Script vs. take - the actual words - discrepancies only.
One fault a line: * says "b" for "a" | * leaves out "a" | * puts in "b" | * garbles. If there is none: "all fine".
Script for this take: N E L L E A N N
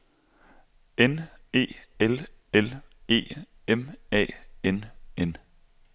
* puts in "M"